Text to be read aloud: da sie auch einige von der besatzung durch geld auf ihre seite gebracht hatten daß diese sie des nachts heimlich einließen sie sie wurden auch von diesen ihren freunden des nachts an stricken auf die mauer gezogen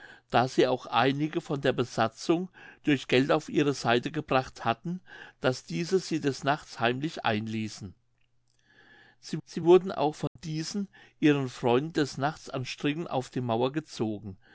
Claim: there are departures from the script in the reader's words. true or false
false